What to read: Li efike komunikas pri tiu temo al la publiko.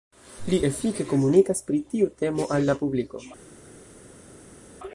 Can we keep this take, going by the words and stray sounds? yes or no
yes